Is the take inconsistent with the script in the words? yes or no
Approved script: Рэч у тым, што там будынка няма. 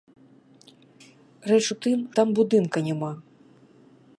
yes